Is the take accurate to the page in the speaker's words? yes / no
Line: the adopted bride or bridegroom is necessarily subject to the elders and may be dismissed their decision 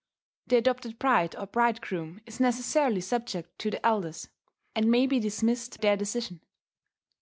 yes